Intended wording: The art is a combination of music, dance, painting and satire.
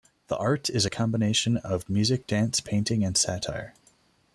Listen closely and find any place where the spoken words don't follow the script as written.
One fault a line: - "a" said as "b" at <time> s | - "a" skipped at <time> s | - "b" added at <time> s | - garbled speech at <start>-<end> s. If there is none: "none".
none